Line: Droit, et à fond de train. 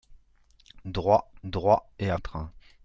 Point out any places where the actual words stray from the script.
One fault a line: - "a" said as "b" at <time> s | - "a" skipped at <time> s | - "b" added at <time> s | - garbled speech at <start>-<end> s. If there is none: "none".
- "droit" added at 1.4 s
- "fond" skipped at 2.2 s